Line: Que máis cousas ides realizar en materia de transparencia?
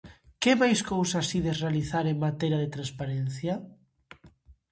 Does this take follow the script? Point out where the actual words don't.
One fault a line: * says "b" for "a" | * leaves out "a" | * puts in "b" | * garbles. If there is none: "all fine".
all fine